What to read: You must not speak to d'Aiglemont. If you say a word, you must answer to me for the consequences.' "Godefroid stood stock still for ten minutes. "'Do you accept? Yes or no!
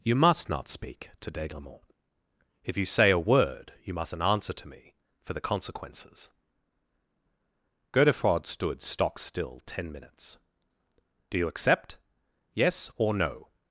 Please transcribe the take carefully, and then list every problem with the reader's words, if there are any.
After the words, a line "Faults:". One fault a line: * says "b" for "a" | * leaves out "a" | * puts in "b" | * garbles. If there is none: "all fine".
You must not speak to d'Aiglemont. If you say a word, you mustn't answer to me for the consequences.' "Godefroid stood stock still ten minutes. "'Do you accept? Yes or no!
Faults:
* says "mustn't" for "must"
* leaves out "for"